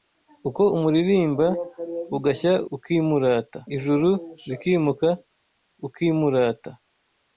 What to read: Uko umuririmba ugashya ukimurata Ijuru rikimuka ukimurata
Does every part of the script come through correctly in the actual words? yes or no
yes